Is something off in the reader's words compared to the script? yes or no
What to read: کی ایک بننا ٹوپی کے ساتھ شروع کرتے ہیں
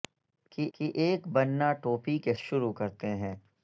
yes